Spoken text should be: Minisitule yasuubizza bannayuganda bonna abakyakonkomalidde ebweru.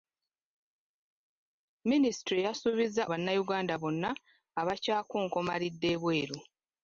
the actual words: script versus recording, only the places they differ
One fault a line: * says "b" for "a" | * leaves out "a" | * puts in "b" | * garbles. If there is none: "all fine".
all fine